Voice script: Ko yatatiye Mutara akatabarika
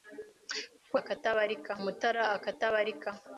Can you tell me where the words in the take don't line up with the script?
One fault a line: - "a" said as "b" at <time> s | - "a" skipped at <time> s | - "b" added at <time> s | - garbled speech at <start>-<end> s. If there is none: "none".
- "yatatiye" said as "akatabarika" at 1.0 s